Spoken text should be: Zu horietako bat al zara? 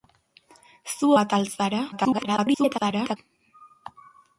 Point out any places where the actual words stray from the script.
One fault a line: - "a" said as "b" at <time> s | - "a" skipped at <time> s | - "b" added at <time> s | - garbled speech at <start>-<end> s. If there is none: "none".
- "horietako" skipped at 1.1 s
- garbled speech at 1.9-3.2 s